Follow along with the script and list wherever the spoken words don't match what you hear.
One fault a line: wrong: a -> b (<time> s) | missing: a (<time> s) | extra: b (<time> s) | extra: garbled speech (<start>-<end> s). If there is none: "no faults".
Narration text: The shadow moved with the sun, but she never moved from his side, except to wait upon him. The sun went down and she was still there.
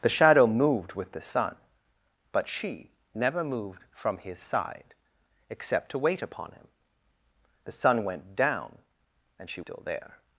missing: was (9.6 s)